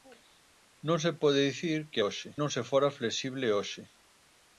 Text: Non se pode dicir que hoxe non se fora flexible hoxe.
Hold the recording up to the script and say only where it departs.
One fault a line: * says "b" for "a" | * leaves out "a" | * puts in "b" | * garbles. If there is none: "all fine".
all fine